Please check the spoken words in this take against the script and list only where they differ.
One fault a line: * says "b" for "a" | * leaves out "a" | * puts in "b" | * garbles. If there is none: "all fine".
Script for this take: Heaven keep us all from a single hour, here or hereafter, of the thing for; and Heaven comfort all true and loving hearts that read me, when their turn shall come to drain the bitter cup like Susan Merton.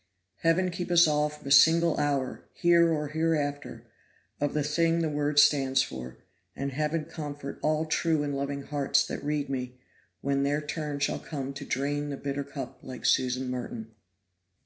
* puts in "the Word stands"